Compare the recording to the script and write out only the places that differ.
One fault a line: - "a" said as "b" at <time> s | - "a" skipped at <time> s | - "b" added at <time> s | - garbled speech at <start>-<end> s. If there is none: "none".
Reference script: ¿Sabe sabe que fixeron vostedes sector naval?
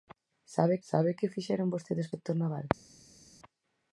none